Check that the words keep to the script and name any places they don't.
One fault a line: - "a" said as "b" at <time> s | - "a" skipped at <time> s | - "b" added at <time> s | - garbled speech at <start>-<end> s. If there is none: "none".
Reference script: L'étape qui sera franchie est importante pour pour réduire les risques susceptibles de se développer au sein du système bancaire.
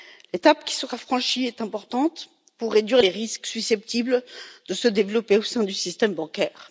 - "pour" skipped at 2.7 s